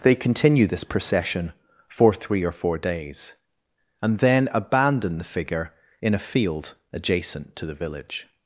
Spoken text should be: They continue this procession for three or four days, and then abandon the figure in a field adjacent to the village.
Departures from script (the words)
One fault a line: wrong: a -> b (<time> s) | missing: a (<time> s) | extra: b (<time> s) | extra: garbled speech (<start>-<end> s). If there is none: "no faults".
no faults